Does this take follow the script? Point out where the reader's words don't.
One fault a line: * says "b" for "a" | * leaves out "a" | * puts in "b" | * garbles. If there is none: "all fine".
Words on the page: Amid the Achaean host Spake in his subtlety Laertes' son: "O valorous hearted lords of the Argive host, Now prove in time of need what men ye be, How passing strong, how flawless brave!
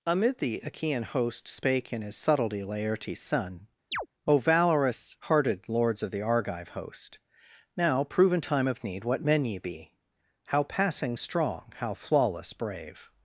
all fine